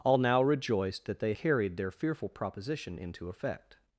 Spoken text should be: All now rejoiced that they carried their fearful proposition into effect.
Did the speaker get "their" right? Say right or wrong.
right